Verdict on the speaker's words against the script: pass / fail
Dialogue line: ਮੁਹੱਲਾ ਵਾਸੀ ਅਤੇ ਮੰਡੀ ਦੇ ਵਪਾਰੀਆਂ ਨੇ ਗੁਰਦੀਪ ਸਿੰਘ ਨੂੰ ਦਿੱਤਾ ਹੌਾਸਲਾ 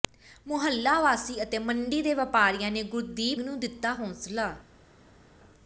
fail